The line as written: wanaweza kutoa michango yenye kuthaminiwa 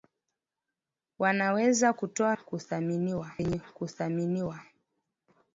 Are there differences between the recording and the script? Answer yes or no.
yes